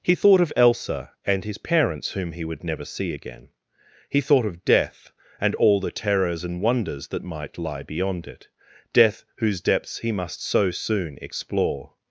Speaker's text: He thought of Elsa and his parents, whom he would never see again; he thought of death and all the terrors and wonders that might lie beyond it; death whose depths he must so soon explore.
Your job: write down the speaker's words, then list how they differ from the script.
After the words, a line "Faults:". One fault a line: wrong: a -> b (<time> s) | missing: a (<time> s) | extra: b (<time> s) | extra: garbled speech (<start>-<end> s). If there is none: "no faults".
He thought of Elsa and his parents, whom he would never see again; he thought of death and all the terrors and wonders that might lie beyond it; death whose depths he must so soon explore.
Faults:
no faults